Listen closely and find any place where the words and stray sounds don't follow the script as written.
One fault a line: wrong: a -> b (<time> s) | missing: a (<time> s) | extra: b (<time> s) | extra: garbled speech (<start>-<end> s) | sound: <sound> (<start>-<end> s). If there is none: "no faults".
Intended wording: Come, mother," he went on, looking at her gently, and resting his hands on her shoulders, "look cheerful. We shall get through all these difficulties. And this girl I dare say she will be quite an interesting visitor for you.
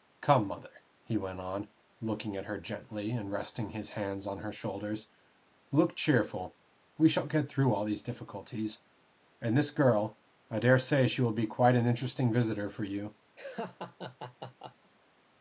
sound: laugh (13.4-14.9 s)